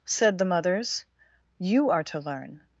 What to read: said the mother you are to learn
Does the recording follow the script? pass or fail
fail